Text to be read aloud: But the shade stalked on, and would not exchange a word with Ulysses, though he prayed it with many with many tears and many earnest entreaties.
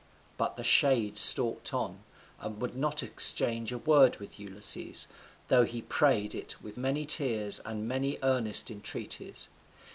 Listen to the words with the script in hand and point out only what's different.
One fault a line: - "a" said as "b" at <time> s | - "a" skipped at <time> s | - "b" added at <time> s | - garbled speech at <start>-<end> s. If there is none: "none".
- "with many" skipped at 7.1 s